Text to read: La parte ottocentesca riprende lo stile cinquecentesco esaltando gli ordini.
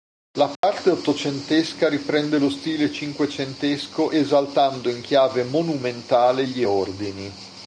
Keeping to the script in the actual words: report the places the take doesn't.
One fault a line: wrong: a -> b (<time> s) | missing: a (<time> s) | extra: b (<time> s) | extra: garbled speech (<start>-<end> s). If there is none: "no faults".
extra: in chiave monumentale (4.9 s)